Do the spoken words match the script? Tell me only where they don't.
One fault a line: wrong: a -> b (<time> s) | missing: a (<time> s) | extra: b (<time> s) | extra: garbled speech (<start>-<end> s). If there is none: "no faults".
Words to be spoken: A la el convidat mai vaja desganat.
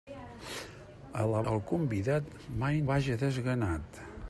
no faults